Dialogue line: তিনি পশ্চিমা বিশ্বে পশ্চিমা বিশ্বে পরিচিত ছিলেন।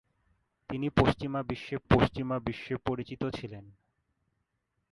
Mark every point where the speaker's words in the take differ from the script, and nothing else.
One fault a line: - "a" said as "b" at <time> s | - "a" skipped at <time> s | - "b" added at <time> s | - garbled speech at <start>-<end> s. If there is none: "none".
none